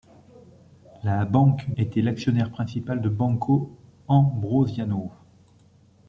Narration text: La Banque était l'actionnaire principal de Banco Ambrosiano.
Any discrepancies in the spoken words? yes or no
no